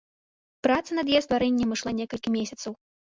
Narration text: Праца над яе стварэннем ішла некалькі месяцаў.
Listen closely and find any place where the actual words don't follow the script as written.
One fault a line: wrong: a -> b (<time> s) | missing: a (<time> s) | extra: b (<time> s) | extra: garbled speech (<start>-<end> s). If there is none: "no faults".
no faults